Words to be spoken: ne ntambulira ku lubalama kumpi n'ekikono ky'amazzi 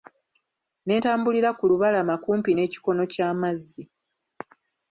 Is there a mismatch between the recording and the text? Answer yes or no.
no